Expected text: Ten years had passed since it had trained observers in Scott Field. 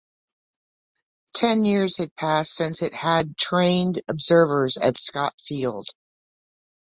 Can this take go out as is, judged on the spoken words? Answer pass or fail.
fail